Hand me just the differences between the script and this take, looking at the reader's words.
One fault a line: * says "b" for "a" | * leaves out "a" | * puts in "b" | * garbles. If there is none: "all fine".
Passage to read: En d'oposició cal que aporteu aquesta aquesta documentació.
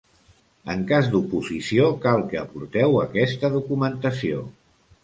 * puts in "cas"
* leaves out "aquesta"